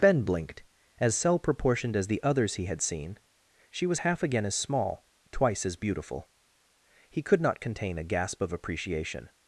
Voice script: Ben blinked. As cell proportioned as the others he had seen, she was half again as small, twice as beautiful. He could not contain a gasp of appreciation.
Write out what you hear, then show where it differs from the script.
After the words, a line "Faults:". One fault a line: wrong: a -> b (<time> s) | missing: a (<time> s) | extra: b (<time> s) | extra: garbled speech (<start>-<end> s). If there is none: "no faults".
Ben blinked. As cell proportioned as the others he had seen, she was half again as small, twice as beautiful. He could not contain a gasp of appreciation.
Faults:
no faults